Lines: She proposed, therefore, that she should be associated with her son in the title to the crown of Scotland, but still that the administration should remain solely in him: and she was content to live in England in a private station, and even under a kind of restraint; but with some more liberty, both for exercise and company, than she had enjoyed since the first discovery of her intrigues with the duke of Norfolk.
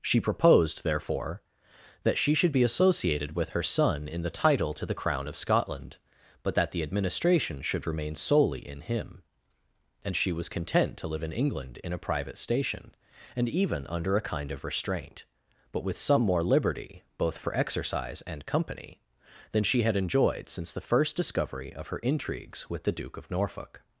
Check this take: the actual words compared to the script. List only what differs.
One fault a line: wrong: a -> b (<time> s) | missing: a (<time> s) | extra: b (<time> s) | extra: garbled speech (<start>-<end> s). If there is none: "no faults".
missing: still (6.5 s)